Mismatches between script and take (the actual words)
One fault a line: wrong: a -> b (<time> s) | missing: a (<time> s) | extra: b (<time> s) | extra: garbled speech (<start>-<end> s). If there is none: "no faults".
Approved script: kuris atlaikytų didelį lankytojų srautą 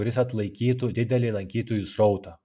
no faults